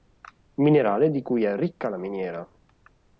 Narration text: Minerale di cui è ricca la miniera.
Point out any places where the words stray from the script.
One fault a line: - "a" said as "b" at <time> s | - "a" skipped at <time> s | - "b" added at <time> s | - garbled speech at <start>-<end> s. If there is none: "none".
none